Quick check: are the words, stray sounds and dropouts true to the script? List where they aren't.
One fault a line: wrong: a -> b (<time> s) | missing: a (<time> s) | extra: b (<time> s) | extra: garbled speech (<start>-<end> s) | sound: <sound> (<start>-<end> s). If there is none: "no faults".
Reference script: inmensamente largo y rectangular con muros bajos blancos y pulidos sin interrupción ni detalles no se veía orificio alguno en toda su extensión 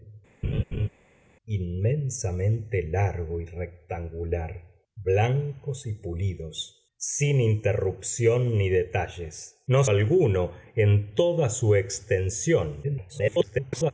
sound: laugh (0.4-0.9 s)
missing: con muros bajos (4.9 s)
missing: se veía orificio (9.8 s)
extra: garbled speech (12.8-13.9 s)